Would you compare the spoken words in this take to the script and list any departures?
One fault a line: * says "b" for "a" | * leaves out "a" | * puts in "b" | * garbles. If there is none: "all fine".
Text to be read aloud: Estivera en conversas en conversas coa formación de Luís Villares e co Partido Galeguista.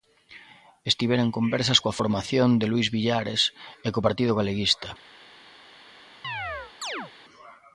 * leaves out "en conversas"